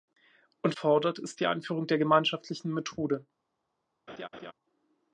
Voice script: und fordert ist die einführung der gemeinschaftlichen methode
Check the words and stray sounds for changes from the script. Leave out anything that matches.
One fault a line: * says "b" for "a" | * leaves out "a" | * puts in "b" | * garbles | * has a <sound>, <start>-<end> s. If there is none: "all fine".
* has a laugh, 4.1-4.5 s